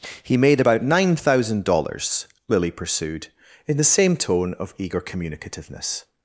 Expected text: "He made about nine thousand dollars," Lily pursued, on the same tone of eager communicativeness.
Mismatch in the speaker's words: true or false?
true